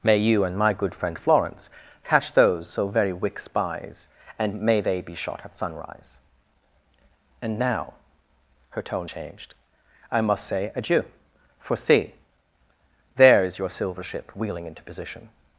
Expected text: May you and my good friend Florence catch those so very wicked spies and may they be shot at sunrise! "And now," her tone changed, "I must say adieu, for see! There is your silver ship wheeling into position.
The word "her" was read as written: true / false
true